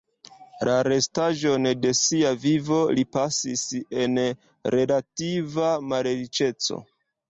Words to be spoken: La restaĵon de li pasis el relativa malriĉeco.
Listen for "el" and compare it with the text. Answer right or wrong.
wrong